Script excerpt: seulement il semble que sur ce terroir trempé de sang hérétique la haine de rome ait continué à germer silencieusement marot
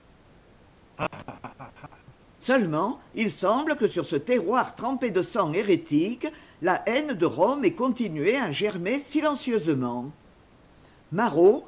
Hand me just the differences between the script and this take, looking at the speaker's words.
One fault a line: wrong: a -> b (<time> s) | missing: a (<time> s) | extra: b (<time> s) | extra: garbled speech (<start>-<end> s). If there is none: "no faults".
no faults